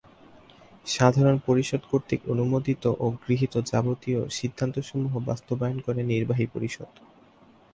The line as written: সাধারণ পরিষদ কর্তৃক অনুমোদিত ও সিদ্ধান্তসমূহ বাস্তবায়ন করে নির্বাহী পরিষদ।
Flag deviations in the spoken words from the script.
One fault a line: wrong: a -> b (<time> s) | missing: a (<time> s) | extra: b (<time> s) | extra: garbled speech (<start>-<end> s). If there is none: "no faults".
extra: গৃহীত যাবতীয় (3.2 s)